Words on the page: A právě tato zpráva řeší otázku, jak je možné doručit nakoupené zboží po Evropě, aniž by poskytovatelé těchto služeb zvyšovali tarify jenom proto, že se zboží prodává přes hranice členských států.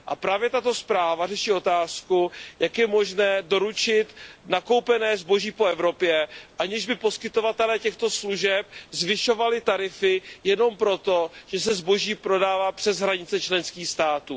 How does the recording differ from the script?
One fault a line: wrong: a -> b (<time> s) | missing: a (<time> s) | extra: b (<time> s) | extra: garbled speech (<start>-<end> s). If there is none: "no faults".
no faults